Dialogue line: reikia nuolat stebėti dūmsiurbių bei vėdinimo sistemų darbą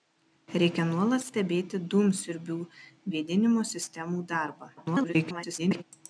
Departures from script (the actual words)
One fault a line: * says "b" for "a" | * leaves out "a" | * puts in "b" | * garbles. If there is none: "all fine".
* leaves out "bei"
* garbles